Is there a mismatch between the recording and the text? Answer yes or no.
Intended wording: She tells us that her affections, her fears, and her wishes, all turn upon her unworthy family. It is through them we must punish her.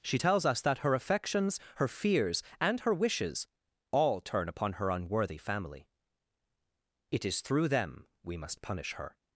no